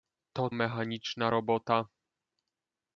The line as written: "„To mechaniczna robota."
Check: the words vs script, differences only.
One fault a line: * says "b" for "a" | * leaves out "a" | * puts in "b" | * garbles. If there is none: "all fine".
all fine